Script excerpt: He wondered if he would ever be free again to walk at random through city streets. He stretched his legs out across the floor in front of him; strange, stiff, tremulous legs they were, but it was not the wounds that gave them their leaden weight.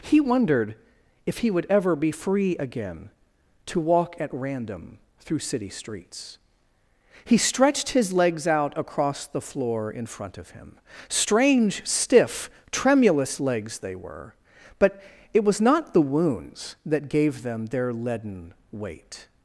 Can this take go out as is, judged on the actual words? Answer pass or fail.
pass